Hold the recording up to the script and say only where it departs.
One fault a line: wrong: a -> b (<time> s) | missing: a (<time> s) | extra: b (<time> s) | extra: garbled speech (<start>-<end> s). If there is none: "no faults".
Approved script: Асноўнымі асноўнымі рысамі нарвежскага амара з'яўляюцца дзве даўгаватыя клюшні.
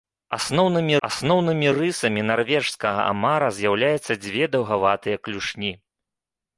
no faults